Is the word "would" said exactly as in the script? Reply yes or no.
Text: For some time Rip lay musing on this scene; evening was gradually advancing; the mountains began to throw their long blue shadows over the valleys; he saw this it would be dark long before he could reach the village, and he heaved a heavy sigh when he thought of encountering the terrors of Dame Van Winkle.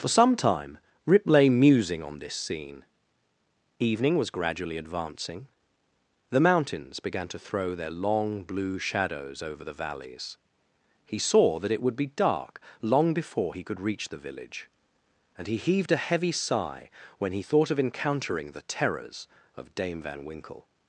yes